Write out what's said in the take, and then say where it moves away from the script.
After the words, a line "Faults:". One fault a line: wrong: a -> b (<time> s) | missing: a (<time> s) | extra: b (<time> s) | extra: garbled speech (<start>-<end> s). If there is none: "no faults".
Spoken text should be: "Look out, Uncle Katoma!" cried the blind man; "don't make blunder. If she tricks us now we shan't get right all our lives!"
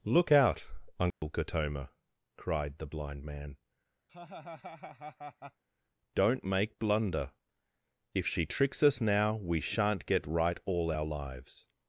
"Look out, Uncle Katoma!" cried the blind man; "don't make blunder. If she tricks us now we shan't get right all our lives!"
Faults:
no faults